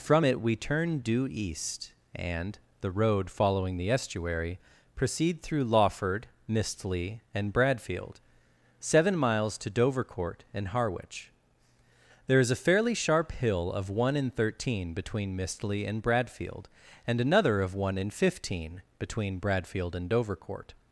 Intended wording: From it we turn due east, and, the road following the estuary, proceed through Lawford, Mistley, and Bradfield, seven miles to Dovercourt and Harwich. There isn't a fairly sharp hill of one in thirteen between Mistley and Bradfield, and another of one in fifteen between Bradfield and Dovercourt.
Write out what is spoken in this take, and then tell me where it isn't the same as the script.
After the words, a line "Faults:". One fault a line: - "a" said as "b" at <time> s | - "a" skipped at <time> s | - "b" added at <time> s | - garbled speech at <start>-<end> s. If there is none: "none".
From it we turn due east, and, the road following the estuary, proceed through Lawford, Mistley, and Bradfield, seven miles to Dovercourt and Harwich. There is a fairly sharp hill of one in thirteen between Mistley and Bradfield, and another of one in fifteen between Bradfield and Dovercourt.
Faults:
- "isn't" said as "is" at 12.4 s